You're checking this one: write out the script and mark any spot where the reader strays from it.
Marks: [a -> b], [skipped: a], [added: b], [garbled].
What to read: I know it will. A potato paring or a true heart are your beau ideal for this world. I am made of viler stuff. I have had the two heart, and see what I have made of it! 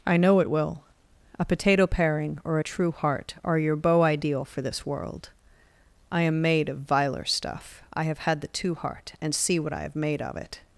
I know it will. A potato paring or a true heart are your beau ideal for this world. I am made of viler stuff. I have had the two heart, and see what I have made of it!